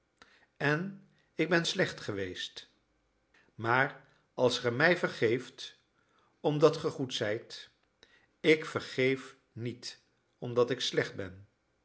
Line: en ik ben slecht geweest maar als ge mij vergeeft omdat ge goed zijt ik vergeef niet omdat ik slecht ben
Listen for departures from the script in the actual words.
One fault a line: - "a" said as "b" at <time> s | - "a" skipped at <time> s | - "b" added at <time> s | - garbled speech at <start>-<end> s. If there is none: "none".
none